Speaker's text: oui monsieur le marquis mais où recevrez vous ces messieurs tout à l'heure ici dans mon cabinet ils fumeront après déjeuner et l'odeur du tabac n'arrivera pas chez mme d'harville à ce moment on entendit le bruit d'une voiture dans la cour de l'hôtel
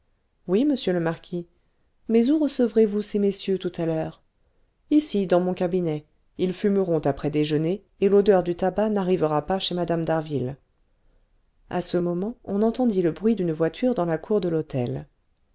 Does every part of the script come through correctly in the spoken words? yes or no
yes